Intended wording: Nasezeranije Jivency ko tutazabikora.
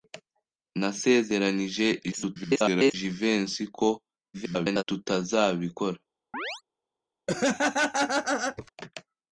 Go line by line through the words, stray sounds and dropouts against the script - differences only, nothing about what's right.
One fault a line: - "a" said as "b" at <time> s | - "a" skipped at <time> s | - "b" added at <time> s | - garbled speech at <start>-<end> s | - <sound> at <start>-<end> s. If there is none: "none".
- garbled speech at 2.1-2.9 s
- garbled speech at 4.3-4.8 s
- chirp at 6.3-6.6 s
- laugh at 7.3-8.7 s